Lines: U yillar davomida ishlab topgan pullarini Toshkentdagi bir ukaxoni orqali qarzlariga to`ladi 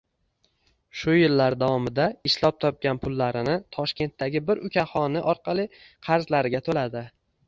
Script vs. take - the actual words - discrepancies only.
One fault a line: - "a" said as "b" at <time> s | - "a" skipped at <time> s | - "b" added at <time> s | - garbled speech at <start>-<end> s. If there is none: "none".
- "U" said as "Shu" at 1.0 s